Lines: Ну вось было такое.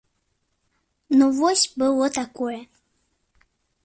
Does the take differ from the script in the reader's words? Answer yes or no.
no